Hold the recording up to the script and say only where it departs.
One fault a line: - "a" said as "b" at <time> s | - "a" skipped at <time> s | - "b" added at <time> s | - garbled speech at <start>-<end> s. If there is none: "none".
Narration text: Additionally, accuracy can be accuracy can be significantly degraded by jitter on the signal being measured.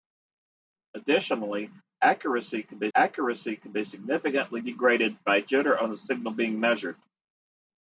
none